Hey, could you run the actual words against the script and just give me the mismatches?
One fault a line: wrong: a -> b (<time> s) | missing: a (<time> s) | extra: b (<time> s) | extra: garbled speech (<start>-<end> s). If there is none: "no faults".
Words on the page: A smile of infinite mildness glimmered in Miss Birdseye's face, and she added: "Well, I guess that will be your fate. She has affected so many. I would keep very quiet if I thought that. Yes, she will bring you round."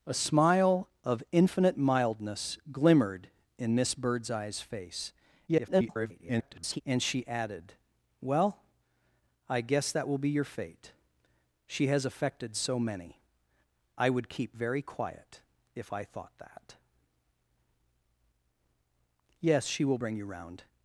extra: garbled speech (5.5-6.8 s)